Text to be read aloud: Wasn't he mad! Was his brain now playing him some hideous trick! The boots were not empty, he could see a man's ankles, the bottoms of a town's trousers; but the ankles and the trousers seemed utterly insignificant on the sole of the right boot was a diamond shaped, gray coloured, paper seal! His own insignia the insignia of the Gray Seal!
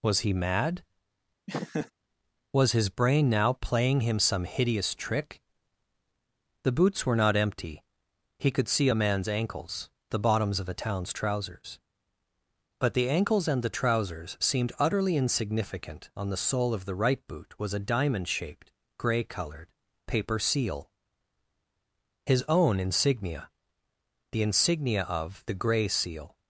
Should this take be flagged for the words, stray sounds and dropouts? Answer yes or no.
yes